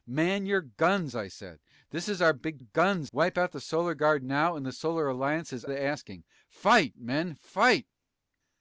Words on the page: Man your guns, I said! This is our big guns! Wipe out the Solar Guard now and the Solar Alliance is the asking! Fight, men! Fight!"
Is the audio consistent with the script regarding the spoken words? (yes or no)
yes